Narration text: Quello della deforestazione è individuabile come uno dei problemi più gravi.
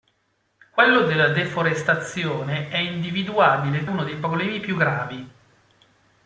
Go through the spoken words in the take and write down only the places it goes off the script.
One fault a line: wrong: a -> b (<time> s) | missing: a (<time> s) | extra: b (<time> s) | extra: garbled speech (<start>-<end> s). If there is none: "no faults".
missing: come (3.9 s)